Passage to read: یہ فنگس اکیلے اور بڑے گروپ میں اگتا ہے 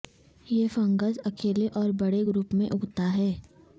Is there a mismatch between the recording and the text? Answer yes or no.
no